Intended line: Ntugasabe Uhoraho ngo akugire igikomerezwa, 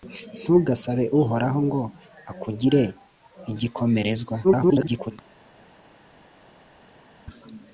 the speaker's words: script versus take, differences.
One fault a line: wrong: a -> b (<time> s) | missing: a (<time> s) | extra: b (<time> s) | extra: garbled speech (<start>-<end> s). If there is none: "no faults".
extra: garbled speech (4.4-5.1 s)